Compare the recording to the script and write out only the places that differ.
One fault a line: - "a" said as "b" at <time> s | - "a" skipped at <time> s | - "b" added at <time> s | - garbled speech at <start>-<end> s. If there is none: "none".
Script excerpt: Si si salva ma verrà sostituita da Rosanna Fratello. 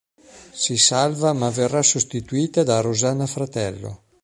- "si" skipped at 0.8 s